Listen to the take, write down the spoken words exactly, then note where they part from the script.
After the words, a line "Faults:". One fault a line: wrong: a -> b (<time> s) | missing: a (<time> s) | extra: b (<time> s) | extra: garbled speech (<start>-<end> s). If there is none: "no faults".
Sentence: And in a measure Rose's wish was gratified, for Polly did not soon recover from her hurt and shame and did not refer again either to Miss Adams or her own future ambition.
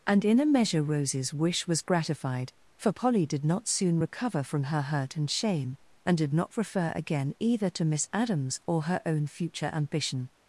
And in a measure Rose's wish was gratified, for Polly did not soon recover from her hurt and shame and did not refer again either to Miss Adams or her own future ambition.
Faults:
no faults